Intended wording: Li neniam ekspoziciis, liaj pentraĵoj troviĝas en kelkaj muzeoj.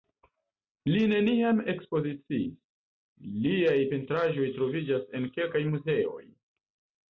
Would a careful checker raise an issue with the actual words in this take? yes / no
no